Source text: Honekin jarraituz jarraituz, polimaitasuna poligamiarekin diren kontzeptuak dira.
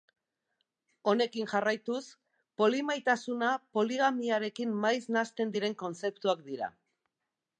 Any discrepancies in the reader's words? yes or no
yes